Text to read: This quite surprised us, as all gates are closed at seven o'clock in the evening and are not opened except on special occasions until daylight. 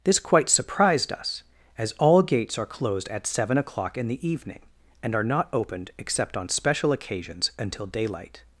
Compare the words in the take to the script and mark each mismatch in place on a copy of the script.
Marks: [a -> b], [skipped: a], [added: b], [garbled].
This quite surprised us, as all gates are closed at seven o'clock in the evening and are not opened except on special occasions until daylight.